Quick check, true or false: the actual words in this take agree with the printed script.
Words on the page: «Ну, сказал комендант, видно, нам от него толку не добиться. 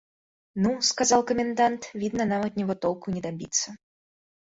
true